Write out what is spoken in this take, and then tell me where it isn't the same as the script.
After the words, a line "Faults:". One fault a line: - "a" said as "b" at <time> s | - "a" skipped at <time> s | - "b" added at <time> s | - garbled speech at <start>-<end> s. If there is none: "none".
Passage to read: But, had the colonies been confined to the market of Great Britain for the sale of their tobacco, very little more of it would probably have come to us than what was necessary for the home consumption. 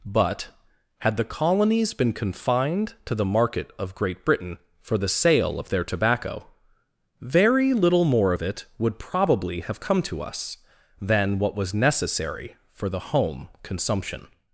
But, had the colonies been confined to the market of Great Britain for the sale of their tobacco, very little more of it would probably have come to us than what was necessary for the home consumption.
Faults:
none